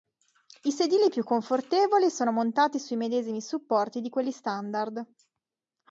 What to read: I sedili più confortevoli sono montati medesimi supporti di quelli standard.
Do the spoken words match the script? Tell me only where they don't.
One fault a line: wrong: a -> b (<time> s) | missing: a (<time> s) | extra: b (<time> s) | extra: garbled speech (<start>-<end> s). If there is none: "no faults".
extra: sui (2.8 s)